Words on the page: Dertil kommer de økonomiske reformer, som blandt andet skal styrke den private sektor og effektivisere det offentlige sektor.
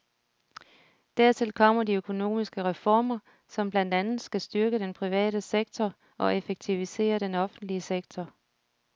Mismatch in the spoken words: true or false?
true